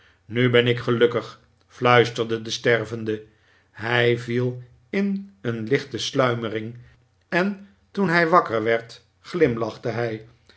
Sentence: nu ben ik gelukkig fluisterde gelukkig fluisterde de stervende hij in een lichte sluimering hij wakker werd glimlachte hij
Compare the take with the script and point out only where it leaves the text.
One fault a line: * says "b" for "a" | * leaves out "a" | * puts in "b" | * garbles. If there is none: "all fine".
* leaves out "gelukkig fluisterde"
* puts in "viel"
* puts in "en toen"